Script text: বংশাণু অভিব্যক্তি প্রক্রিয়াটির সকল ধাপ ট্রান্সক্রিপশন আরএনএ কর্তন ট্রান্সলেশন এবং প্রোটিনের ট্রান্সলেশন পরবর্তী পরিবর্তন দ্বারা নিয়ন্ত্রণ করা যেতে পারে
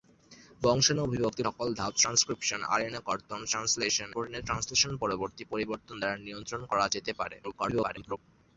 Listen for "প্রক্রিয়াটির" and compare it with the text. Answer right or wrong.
wrong